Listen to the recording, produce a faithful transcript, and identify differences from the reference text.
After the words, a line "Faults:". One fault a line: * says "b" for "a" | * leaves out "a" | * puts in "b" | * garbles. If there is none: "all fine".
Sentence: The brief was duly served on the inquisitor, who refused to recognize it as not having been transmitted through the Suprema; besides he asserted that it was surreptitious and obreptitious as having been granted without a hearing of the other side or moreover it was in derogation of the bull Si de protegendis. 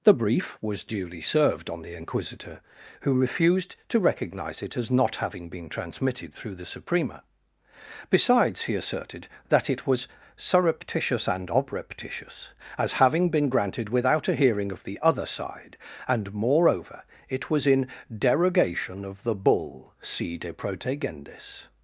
The brief was duly served on the inquisitor, who refused to recognize it as not having been transmitted through the Suprema; besides he asserted that it was surreptitious and obreptitious as having been granted without a hearing of the other side and moreover it was in derogation of the bull Si de protegendis.
Faults:
* says "and" for "or"